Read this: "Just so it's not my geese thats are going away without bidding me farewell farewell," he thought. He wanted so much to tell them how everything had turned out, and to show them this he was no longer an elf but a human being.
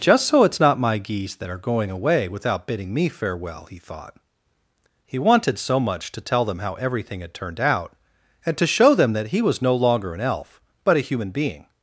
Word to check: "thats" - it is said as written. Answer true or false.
false